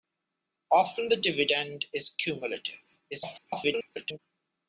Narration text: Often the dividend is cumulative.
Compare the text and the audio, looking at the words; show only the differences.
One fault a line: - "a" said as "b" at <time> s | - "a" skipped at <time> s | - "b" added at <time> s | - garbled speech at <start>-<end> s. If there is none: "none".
- garbled speech at 3.1-4.2 s